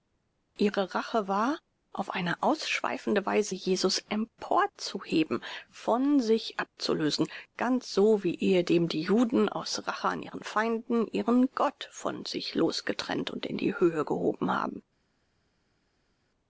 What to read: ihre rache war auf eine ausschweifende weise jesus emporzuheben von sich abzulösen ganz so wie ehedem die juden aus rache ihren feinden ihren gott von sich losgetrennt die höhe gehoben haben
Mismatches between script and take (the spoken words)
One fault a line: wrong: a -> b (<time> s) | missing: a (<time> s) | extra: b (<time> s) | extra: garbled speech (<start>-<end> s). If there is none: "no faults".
extra: an (10.1 s)
extra: und in (13.3 s)